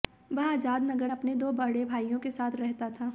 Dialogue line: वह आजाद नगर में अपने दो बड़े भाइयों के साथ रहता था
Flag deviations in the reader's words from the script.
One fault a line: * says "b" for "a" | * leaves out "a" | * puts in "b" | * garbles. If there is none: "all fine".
* leaves out "में"